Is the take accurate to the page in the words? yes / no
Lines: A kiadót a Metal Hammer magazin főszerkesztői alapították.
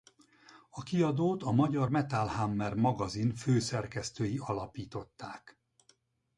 no